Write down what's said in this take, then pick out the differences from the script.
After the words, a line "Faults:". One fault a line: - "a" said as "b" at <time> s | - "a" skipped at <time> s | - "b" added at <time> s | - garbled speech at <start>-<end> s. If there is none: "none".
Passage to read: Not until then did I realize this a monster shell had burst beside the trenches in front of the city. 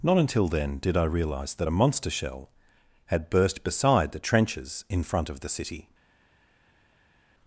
Not until then did I realize that a monster shell had burst beside the trenches in front of the city.
Faults:
- "this" said as "that" at 1.6 s